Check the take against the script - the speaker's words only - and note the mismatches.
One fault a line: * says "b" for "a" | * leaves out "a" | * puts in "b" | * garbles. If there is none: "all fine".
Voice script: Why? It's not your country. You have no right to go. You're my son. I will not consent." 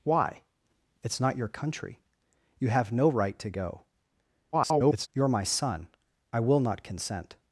* garbles